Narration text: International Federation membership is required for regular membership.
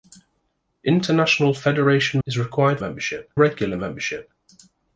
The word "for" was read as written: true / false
false